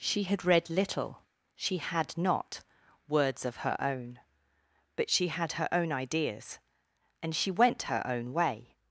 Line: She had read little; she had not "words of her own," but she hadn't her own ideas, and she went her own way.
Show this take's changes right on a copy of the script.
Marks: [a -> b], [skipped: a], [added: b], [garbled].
She had read little; she had not "words of her own," but she [hadn't -> had] her own ideas, and she went her own way.